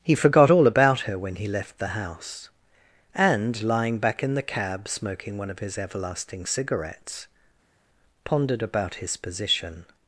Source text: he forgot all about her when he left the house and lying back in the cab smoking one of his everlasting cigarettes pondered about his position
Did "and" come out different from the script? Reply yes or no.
no